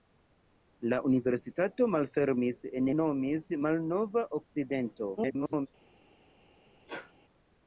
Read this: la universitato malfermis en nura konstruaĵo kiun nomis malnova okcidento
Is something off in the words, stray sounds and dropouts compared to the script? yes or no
yes